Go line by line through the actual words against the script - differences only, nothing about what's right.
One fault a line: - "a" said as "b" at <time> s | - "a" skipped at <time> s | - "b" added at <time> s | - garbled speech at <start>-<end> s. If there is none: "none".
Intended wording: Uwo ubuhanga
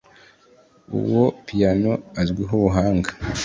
- "piyano azwiho" added at 1.4 s